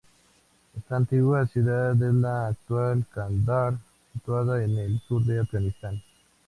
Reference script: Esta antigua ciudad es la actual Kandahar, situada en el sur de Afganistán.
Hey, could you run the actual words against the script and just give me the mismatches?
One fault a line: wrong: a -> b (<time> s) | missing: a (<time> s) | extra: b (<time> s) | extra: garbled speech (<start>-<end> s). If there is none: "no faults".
no faults